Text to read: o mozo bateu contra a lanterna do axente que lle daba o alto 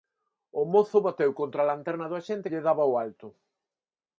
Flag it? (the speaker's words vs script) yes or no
yes